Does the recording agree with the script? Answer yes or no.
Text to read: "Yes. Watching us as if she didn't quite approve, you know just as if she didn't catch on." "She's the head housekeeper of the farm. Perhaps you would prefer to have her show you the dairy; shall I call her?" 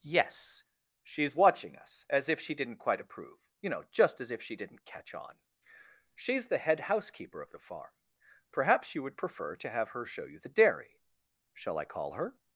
no